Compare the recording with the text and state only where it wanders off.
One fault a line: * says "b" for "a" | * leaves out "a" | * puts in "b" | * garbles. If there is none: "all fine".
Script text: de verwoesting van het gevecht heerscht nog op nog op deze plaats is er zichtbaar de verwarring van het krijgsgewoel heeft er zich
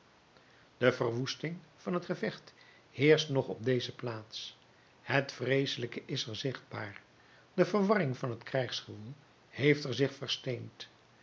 * says "deze plaats het vreeselijke" for "nog op deze plaats"